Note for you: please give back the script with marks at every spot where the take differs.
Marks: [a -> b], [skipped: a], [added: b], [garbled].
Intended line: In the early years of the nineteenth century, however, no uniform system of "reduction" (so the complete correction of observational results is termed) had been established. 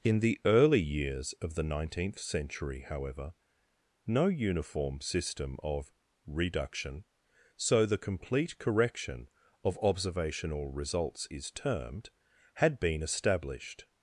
In the early years of the nineteenth century, however, no uniform system of "reduction" (so the complete correction of observational results is termed) had been established.